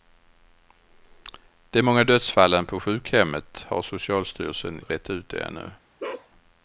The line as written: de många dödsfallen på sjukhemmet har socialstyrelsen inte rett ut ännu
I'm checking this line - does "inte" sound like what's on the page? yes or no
no